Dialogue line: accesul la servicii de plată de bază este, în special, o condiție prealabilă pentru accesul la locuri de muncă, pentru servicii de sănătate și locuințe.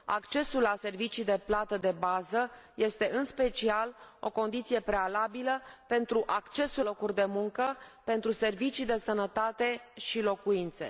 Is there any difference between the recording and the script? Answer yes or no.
yes